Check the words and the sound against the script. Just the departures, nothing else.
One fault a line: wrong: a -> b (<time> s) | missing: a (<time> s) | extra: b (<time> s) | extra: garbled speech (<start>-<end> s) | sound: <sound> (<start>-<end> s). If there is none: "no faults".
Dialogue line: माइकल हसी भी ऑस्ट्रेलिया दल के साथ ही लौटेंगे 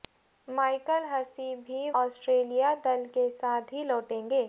no faults